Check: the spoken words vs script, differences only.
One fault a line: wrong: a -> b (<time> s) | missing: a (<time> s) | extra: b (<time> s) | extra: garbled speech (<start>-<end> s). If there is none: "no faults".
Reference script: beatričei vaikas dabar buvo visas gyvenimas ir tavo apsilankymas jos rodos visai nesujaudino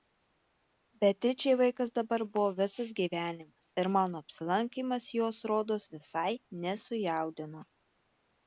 wrong: tavo -> mano (4.0 s)